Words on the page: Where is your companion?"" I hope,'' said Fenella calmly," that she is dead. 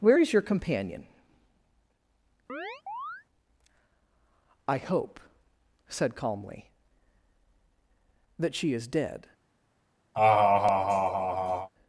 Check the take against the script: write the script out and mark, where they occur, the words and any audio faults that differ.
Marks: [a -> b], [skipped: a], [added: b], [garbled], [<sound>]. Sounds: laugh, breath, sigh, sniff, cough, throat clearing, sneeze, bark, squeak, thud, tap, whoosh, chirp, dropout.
Where is your companion?"" [chirp] I hope,'' said [skipped: Fenella] calmly," that she is dead. [laugh]